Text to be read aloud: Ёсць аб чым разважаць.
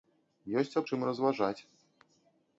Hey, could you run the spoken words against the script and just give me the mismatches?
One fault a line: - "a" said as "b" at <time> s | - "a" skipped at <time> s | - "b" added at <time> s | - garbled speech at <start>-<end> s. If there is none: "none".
none